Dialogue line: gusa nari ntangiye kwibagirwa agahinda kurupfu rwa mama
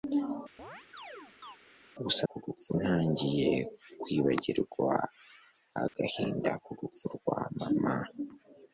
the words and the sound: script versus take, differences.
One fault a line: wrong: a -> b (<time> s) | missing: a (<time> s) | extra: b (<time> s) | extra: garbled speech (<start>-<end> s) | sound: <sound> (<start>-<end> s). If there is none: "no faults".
sound: chirp (0.6-1.6 s)
wrong: nari -> kurupfu (2.3 s)
sound: dropout (5.9-5.9 s)